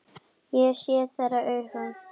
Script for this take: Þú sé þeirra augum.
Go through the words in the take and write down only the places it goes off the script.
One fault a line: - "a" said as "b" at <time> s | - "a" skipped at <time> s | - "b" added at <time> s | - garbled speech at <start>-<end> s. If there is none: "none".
- "Þú" said as "Ég" at 0.6 s